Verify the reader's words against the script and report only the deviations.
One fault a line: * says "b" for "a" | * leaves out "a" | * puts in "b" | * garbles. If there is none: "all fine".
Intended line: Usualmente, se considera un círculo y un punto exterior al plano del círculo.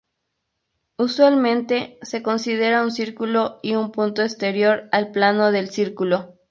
all fine